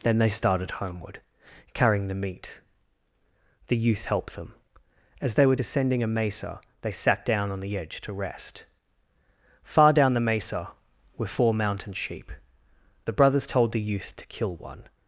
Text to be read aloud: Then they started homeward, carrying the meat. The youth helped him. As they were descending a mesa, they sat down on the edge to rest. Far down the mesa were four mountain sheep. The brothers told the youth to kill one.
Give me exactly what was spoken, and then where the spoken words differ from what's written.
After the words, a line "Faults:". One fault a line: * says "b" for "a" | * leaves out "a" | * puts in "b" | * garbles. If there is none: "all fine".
Then they started homeward, carrying the meat. The youth helped them. As they were descending a mesa, they sat down on the edge to rest. Far down the mesa were four mountain sheep. The brothers told the youth to kill one.
Faults:
* says "them" for "him"